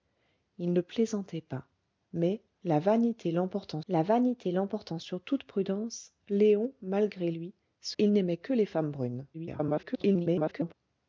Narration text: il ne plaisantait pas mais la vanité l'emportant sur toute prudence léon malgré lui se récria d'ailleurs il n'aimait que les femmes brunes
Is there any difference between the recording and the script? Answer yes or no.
yes